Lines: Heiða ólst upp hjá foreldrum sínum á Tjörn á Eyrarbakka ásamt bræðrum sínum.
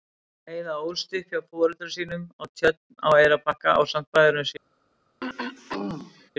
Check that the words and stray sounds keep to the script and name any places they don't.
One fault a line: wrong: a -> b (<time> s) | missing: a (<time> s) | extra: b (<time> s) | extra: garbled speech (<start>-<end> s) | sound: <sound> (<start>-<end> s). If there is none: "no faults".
sound: throat clearing (5.2-6.3 s)